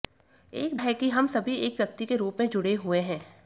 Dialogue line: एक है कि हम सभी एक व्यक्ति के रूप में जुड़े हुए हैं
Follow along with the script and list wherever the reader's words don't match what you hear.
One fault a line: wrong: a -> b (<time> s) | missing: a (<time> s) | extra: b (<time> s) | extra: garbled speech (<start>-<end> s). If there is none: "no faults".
no faults